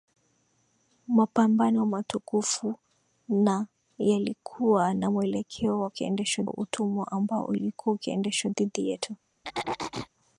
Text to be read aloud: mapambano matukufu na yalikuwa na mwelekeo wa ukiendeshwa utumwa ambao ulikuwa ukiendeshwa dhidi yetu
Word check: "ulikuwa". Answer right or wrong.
right